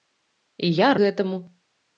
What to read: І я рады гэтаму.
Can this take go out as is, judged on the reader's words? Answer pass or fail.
fail